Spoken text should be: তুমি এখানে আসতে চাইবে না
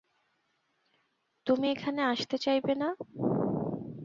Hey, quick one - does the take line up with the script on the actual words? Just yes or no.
yes